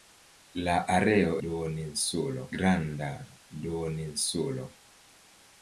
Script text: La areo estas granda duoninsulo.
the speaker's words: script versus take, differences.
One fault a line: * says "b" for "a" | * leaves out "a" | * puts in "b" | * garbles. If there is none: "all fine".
* says "duoninsulo" for "estas"